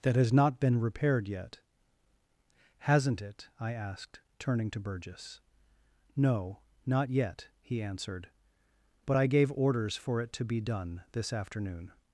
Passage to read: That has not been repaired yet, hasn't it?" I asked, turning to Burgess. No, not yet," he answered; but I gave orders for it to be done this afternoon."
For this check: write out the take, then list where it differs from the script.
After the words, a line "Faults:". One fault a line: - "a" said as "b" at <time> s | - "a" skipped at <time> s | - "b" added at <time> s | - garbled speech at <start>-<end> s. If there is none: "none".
That has not been repaired yet, hasn't it?" I asked, turning to Burgess. No, not yet," he answered; but I gave orders for it to be done this afternoon."
Faults:
none